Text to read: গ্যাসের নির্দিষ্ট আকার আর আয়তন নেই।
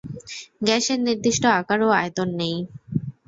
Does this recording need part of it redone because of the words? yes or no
yes